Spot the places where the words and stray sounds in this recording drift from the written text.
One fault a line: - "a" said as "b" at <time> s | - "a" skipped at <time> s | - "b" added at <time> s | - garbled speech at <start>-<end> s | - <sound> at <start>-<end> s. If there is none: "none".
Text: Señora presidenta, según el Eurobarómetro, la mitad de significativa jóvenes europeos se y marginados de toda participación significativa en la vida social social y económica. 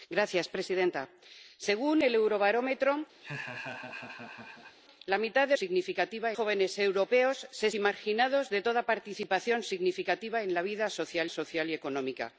- laugh at 3.2-4.8 s